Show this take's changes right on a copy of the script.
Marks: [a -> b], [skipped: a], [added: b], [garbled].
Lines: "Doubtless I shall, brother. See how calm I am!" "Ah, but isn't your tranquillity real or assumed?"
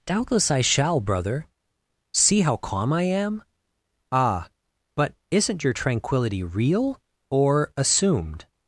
"Doubtless I shall, brother. See how calm I am!" "Ah, but isn't your tranquillity real or assumed?"